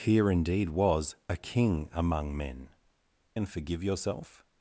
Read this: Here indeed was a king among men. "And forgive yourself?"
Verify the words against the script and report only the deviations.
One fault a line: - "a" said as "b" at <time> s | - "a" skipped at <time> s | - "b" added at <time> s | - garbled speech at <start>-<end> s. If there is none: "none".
none